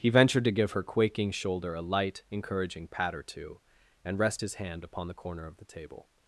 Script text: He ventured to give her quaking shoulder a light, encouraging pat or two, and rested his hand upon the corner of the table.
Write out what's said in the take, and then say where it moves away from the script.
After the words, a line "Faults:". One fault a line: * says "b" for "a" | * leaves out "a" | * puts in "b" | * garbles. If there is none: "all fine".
He ventured to give her quaking shoulder a light, encouraging pat or two, and rest his hand upon the corner of the table.
Faults:
* says "rest" for "rested"